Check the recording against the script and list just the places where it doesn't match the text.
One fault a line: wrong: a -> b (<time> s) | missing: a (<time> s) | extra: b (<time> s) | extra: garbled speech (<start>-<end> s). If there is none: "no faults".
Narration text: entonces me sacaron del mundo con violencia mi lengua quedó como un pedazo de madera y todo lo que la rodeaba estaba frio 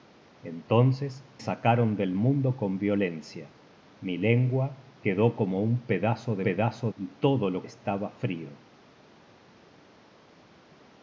missing: me (1.3 s)
wrong: madera -> pedazo (6.4 s)
missing: que la rodeaba (7.6 s)